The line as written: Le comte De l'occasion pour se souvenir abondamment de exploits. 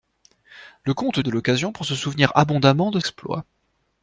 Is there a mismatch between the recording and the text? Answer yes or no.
no